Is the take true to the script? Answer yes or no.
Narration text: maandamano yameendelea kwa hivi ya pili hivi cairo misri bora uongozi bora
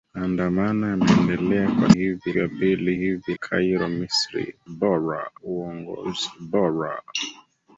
yes